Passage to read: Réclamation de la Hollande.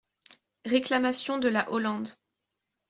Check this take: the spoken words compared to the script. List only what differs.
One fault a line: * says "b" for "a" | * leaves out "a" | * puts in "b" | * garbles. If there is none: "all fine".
all fine